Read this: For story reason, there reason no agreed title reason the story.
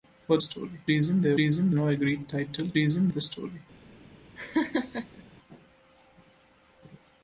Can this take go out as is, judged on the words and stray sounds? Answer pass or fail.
fail